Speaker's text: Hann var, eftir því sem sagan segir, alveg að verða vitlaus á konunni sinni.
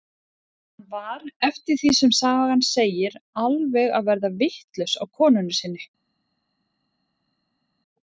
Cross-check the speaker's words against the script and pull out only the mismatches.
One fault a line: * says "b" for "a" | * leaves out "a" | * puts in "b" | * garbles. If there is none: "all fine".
all fine